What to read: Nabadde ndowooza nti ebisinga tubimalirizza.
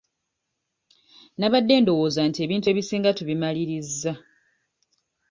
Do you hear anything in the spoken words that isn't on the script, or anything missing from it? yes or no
yes